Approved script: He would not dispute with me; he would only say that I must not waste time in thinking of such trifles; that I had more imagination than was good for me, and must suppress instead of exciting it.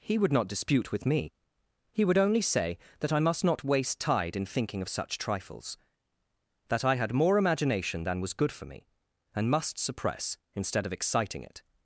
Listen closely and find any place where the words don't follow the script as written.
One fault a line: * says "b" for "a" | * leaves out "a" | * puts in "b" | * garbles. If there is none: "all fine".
* says "tide" for "time"